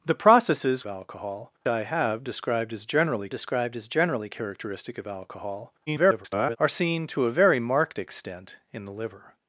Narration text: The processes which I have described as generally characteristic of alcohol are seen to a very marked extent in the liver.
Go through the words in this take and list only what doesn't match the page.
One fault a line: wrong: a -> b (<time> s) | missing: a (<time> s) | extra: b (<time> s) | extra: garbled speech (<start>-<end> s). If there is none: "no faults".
wrong: which -> alcohol (0.8 s)
extra: described as generally (3.3 s)
extra: garbled speech (5.9-6.6 s)